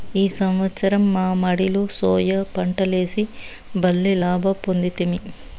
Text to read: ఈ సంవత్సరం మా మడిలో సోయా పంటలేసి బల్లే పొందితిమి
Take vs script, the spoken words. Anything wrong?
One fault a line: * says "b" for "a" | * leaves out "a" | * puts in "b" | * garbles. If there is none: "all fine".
* puts in "లాభ"